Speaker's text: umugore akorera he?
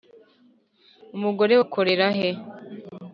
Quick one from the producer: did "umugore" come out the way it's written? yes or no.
yes